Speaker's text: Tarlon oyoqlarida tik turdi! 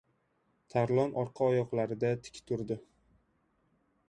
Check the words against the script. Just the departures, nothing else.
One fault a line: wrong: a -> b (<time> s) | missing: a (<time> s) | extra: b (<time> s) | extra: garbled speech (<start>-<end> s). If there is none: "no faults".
extra: orqa (1.2 s)